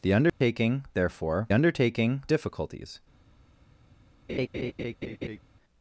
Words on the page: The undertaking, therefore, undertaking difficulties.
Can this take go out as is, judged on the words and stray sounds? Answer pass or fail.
fail